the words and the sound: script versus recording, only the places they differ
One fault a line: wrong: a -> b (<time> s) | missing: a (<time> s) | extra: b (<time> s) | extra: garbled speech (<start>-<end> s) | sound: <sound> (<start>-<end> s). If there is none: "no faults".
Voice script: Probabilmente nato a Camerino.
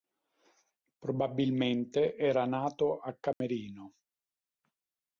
extra: era (2.2 s)
sound: dropout (3.3-3.4 s)